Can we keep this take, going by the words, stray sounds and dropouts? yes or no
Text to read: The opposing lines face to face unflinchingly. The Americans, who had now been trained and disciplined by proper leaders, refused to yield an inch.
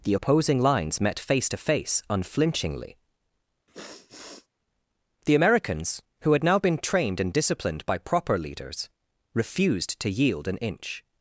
no